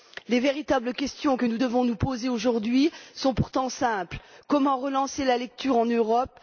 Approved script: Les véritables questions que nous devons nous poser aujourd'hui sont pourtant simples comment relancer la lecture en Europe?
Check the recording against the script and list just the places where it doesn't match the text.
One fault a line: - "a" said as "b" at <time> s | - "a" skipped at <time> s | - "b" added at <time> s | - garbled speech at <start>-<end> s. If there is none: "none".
none